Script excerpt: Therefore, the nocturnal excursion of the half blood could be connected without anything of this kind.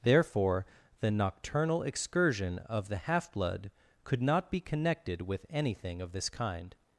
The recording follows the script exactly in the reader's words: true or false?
false